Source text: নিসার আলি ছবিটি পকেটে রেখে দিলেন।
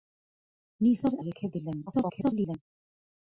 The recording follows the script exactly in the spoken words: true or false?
false